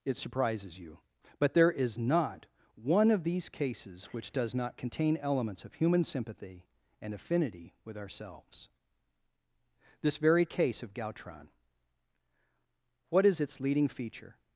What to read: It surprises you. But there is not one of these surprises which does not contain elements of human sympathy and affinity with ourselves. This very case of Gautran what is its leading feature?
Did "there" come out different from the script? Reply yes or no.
no